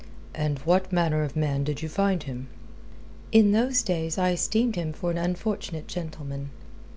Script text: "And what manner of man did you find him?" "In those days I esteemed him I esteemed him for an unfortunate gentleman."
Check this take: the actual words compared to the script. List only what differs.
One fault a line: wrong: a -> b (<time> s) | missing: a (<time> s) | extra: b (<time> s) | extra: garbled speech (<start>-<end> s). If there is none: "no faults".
missing: I esteemed him (4.9 s)